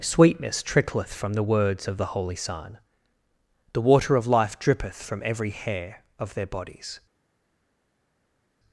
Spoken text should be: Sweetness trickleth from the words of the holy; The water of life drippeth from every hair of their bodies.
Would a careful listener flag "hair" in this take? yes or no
no